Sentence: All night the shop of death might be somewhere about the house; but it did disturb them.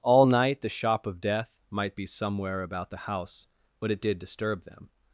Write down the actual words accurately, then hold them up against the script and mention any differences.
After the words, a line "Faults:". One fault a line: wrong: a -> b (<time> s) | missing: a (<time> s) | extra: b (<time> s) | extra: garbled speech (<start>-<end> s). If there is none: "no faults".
All night the shop of death might be somewhere about the house; but it did disturb them.
Faults:
no faults